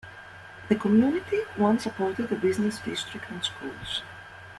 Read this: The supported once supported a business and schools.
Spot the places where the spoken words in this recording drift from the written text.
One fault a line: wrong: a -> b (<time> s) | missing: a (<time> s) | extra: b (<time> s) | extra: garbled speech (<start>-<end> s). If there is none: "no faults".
wrong: supported -> community (0.8 s)
extra: district (2.8 s)